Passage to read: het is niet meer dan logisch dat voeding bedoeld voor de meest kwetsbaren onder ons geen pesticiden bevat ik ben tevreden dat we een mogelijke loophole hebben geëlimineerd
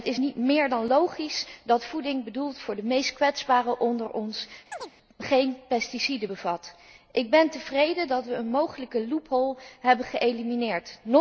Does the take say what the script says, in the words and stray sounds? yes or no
no